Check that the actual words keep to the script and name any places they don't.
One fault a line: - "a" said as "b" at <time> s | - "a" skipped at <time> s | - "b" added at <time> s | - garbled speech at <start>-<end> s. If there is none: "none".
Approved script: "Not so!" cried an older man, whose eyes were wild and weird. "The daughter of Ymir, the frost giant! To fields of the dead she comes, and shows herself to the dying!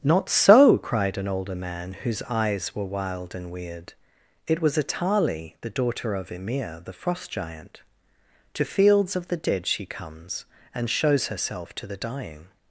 - "It was Atali" added at 4.5 s